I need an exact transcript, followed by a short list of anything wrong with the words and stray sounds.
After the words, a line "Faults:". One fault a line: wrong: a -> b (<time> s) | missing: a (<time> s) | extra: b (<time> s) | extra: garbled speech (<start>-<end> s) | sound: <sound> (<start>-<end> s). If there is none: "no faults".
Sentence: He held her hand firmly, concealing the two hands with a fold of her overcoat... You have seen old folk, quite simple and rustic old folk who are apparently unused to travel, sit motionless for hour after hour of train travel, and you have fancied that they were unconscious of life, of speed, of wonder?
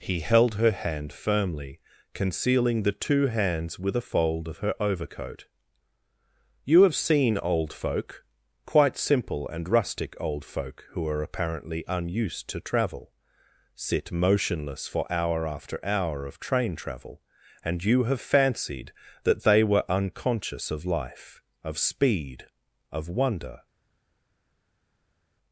He held her hand firmly, concealing the two hands with a fold of her overcoat... You have seen old folk, quite simple and rustic old folk who are apparently unused to travel, sit motionless for hour after hour of train travel, and you have fancied that they were unconscious of life, of speed, of wonder?
Faults:
no faults